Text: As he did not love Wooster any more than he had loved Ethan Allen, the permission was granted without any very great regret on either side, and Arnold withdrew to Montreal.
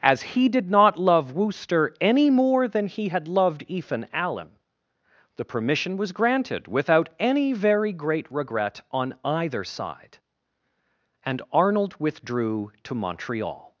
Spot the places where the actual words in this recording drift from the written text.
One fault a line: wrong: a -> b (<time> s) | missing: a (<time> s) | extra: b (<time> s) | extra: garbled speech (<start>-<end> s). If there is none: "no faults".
no faults